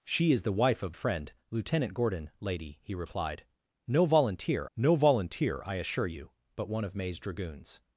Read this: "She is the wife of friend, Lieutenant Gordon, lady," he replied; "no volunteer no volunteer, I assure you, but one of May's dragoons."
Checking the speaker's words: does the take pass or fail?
pass